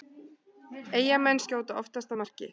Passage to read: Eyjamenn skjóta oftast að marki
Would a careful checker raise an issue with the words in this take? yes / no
no